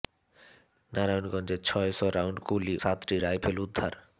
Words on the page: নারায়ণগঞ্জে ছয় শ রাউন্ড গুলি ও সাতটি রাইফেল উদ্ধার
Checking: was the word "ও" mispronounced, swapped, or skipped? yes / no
yes